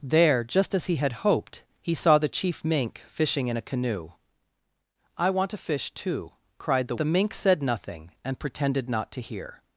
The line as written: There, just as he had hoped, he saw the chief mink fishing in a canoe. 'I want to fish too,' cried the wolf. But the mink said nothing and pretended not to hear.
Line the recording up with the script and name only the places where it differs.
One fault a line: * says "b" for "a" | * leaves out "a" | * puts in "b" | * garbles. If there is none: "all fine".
* leaves out "wolf But"